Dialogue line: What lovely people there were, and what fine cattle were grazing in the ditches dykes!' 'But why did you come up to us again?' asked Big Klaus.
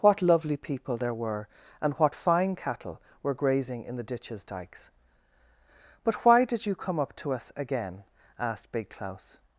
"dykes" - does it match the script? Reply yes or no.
yes